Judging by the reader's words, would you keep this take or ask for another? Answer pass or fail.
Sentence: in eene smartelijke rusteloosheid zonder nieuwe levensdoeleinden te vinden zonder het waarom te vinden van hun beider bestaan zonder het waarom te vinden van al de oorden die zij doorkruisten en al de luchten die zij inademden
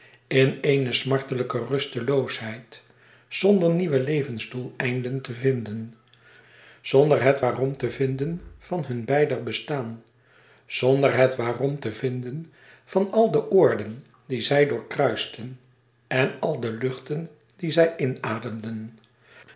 pass